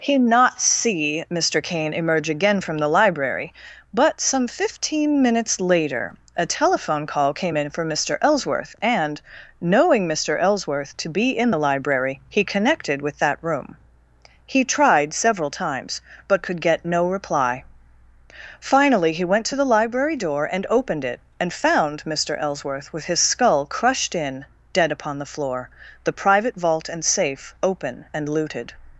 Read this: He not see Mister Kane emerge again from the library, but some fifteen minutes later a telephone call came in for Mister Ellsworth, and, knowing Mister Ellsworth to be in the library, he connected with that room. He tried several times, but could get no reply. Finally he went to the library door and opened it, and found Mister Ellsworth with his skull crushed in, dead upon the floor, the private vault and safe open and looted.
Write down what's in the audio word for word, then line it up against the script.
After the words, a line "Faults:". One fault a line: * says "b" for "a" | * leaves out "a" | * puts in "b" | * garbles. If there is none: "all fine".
He not see Mister Kane emerge again from the library, but some fifteen minutes later a telephone call came in for Mister Ellsworth, and, knowing Mister Ellsworth to be in the library, he connected with that room. He tried several times, but could get no reply. Finally he went to the library door and opened it, and found Mister Ellsworth with his skull crushed in, dead upon the floor, the private vault and safe open and looted.
Faults:
all fine